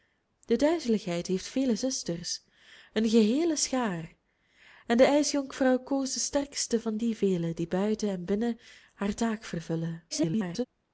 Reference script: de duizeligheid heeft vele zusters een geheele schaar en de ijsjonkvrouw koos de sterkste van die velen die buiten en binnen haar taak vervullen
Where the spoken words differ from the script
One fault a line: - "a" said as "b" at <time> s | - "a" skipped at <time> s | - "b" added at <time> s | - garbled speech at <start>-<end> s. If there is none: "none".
- garbled speech at 10.1-10.7 s